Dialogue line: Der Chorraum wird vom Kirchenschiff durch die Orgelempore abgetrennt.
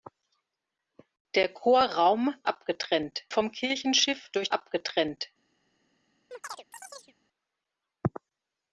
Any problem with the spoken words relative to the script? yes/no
yes